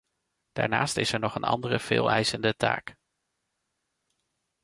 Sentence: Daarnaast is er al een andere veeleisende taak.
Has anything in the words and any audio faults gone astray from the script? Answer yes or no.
yes